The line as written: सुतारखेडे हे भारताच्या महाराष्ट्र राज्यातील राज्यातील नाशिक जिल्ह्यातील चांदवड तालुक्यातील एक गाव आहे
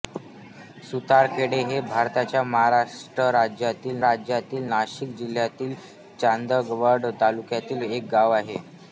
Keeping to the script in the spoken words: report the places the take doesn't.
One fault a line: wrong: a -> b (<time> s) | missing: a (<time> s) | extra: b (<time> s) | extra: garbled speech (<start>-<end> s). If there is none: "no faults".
no faults